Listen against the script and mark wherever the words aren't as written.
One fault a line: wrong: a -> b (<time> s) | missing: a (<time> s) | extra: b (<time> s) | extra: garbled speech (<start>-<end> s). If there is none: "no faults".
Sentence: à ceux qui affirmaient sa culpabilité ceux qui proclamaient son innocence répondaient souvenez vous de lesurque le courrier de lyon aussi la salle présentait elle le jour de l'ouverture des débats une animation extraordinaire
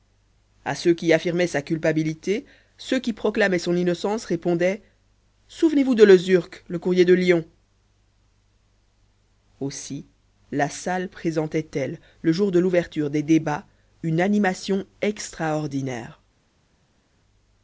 no faults